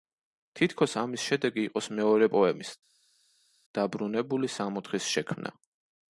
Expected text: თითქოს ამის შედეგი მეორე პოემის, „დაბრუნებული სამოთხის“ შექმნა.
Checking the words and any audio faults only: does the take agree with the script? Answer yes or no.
no